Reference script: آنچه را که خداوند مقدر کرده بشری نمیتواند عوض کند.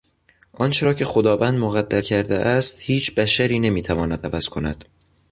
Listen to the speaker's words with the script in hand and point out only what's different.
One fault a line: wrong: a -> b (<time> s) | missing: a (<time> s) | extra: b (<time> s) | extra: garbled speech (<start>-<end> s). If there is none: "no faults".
extra: است هیچ (2.3 s)